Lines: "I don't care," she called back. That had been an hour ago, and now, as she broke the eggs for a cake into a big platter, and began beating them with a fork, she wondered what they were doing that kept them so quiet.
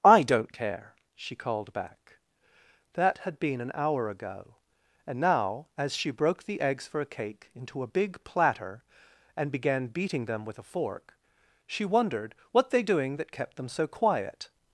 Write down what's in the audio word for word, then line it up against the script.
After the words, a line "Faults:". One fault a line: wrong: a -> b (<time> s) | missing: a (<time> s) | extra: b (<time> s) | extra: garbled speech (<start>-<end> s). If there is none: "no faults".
"I don't care," she called back. That had been an hour ago, and now, as she broke the eggs for a cake into a big platter, and began beating them with a fork, she wondered what they doing that kept them so quiet.
Faults:
missing: were (12.8 s)